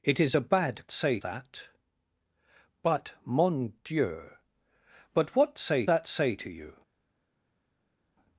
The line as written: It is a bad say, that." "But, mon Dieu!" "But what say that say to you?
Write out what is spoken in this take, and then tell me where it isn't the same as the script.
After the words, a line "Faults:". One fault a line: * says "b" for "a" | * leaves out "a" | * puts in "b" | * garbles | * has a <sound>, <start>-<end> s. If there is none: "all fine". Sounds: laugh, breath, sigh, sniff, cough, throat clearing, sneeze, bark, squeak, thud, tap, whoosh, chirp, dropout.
It is a bad say, that." "But, mon Dieu!" "But what say that say to you?
Faults:
all fine